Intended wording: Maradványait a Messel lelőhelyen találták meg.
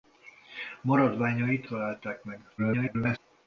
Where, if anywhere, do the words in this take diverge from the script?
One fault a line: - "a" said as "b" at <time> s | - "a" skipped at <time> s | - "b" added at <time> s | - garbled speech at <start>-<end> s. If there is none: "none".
- "a Messel lelőhelyen" skipped at 1.7 s
- garbled speech at 2.6-3.2 s